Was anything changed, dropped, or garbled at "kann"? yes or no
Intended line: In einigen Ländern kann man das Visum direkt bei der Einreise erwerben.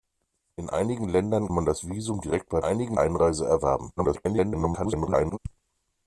yes